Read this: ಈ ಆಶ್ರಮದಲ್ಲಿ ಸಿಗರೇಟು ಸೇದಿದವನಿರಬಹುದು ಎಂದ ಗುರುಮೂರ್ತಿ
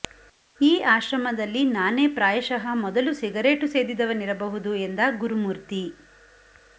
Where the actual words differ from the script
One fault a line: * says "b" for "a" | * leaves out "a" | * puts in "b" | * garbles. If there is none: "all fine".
* puts in "ನಾನೇ ಪ್ರಾಯಶಃ ಮೊದಲು"